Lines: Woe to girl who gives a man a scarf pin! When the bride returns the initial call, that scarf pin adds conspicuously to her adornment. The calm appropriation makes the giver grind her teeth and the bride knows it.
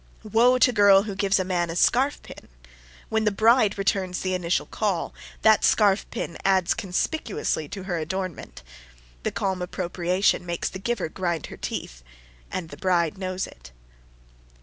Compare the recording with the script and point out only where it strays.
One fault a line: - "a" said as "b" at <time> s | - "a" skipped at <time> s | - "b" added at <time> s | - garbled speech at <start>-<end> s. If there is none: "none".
none